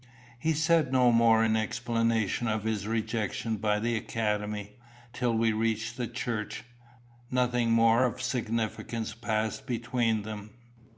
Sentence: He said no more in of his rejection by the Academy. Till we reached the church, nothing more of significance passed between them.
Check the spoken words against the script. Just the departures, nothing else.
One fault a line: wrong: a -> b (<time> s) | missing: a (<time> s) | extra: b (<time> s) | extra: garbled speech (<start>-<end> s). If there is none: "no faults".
extra: explanation (1.6 s)